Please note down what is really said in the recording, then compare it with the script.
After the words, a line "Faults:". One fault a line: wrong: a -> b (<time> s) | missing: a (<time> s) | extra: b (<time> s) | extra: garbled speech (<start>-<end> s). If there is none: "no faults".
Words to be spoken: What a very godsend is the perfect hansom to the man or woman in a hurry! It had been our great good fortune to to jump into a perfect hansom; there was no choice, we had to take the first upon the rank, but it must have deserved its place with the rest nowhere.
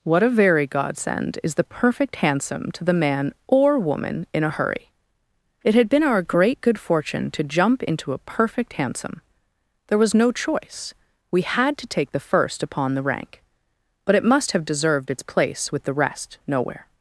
What a very godsend is the perfect hansom to the man or woman in a hurry! It had been our great good fortune to jump into a perfect hansom; there was no choice, we had to take the first upon the rank, but it must have deserved its place with the rest nowhere.
Faults:
missing: to (7.4 s)